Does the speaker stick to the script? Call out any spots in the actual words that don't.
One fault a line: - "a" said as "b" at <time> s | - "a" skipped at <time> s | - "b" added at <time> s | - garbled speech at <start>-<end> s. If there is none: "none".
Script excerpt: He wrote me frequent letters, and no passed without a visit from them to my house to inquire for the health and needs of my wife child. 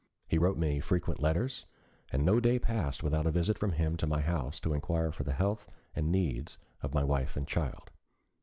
- "day" added at 2.4 s
- "them" said as "him" at 3.7 s
- "and" added at 7.4 s